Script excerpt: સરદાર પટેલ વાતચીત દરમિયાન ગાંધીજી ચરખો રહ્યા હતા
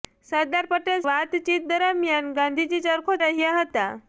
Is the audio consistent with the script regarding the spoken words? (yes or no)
yes